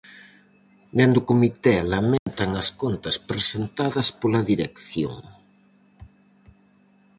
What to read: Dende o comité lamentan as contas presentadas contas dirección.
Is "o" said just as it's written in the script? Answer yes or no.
yes